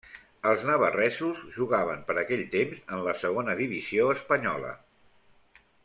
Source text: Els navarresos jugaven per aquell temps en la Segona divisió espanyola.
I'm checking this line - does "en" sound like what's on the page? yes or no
yes